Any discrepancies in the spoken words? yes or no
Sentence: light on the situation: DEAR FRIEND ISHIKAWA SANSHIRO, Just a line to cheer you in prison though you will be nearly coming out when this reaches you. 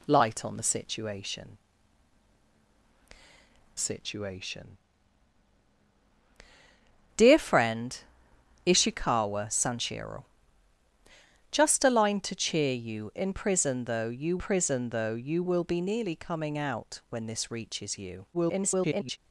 yes